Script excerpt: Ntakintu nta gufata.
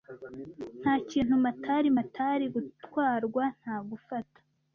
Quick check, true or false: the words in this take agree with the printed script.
false